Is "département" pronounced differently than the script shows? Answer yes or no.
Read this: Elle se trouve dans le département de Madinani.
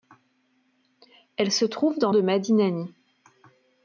yes